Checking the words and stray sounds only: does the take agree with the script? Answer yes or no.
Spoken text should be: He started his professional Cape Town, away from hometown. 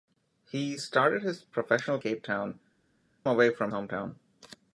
yes